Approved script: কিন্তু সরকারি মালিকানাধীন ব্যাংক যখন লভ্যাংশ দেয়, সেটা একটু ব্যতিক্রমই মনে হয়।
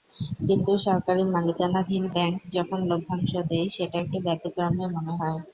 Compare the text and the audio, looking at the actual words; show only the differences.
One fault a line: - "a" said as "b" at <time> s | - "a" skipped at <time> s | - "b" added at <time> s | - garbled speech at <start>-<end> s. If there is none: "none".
none